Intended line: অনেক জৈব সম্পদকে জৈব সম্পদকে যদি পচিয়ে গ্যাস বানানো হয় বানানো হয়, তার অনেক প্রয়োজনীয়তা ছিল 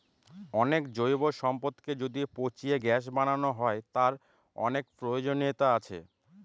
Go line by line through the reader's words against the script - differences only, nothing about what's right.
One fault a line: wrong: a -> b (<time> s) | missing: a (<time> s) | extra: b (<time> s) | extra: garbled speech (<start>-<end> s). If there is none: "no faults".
missing: জৈব সম্পদকে (1.9 s)
missing: বানানো হয় (3.8 s)
wrong: ছিল -> আছে (5.8 s)